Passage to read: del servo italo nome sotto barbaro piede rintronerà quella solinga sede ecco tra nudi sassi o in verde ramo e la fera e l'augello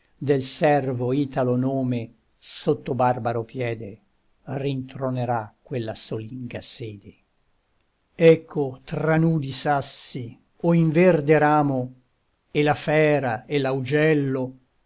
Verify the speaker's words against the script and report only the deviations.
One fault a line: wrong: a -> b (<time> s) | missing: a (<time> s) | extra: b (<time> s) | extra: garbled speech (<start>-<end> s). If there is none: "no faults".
no faults